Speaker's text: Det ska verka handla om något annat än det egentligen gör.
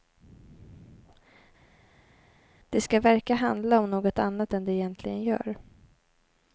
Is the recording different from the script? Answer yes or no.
no